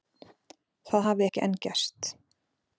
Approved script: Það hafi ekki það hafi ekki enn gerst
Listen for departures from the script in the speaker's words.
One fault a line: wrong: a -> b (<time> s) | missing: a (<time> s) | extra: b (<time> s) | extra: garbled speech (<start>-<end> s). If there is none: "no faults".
missing: það hafi ekki (1.4 s)